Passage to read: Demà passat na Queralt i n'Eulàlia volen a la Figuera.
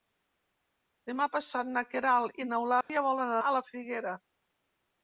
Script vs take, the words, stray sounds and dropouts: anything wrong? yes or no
yes